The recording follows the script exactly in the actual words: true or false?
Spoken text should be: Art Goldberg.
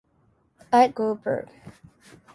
true